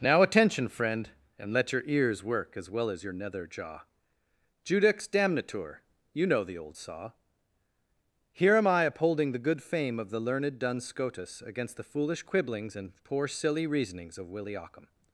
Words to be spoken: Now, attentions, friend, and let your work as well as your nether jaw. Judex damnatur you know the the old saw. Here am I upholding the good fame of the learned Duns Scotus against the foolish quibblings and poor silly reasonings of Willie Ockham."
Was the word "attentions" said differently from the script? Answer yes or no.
yes